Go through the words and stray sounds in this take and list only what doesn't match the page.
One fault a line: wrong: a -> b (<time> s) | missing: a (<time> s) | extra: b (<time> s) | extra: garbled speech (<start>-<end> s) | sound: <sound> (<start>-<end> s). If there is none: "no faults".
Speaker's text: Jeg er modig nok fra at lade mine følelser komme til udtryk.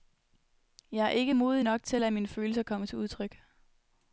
extra: ikke (1.1 s)
wrong: fra -> til (1.8 s)